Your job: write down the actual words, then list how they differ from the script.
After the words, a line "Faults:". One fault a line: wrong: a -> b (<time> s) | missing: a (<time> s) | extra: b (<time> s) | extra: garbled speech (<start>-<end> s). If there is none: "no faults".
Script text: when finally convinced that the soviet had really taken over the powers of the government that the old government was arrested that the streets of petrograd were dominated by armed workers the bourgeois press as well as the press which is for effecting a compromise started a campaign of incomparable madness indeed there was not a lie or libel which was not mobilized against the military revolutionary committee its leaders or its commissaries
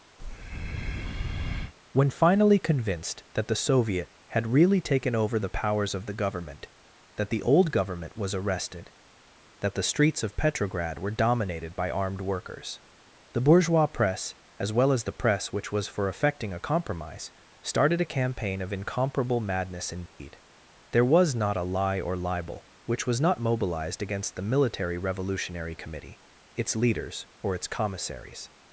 when finally convinced that the soviet had really taken over the powers of the government that the old government was arrested that the streets of petrograd were dominated by armed workers the bourgeois press as well as the press which was for effecting a compromise started a campaign of incomparable madness indeed there was not a lie or libel which was not mobilized against the military revolutionary committee its leaders or its commissaries
Faults:
wrong: is -> was (15.7 s)